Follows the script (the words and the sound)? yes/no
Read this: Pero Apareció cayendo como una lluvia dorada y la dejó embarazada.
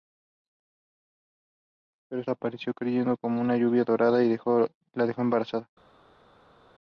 yes